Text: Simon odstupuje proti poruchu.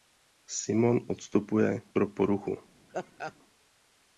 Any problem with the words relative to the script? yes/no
yes